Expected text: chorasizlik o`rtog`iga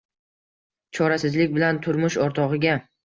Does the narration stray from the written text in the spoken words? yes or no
yes